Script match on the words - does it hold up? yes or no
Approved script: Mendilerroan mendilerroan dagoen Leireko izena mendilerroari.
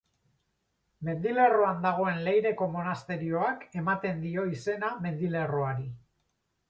no